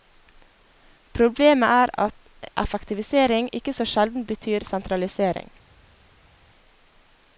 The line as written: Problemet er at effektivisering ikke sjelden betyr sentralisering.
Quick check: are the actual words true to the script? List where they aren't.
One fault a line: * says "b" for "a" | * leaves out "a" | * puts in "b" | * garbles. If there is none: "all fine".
* puts in "så"